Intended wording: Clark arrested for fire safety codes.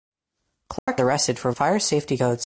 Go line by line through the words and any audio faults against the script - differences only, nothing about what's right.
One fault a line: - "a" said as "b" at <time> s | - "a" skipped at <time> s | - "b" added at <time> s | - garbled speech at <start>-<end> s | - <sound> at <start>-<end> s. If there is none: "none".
- dropout at 0.8-0.9 s